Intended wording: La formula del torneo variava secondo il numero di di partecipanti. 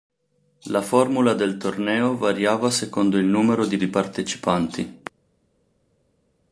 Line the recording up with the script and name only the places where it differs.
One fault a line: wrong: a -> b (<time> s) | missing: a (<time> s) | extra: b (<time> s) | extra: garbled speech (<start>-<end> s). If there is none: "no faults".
no faults